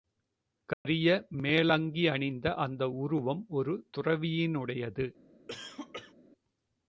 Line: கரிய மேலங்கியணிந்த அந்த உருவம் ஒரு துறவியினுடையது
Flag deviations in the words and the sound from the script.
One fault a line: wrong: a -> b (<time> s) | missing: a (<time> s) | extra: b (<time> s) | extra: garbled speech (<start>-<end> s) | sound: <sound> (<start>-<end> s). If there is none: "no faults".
sound: dropout (0.7-0.8 s)
sound: cough (5.5-6.1 s)